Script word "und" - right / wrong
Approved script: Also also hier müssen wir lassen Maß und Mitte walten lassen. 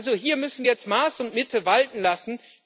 right